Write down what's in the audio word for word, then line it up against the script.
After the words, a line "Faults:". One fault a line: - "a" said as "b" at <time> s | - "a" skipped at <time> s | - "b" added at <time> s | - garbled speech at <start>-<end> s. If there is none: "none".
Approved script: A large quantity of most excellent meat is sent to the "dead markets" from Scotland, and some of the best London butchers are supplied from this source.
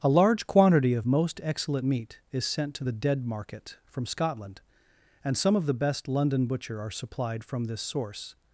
A large quantity of most excellent meat is sent to the "dead market" from Scotland, and some of the best London butcher are supplied from this source.
Faults:
- "markets" said as "market" at 3.2 s
- "butchers" said as "butcher" at 6.5 s